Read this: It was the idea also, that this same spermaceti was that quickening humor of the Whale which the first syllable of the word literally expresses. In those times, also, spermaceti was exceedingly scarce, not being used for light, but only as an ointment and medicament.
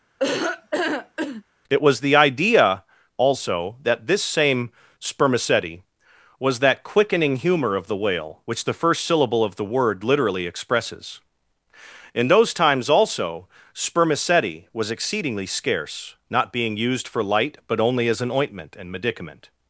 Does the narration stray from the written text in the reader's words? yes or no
no